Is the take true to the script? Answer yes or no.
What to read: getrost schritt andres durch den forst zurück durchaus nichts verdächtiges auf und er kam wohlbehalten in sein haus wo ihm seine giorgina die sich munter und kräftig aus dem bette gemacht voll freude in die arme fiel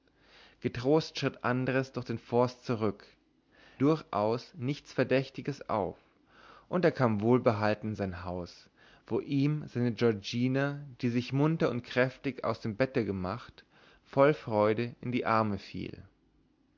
yes